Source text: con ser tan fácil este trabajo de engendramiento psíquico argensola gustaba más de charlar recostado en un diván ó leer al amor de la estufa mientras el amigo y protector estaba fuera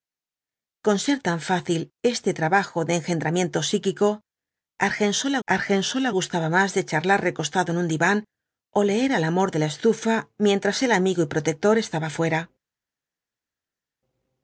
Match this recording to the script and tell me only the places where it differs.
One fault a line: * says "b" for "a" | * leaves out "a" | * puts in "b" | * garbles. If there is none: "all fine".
* puts in "argensola"